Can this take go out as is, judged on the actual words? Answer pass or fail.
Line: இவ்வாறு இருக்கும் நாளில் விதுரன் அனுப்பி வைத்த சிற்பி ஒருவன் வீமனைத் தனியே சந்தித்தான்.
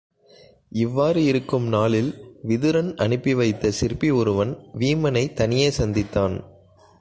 pass